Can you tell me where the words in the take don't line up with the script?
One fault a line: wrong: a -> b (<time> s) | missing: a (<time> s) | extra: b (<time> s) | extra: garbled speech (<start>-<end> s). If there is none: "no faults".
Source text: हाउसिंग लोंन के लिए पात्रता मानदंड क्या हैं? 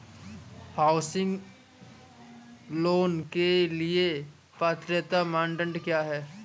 no faults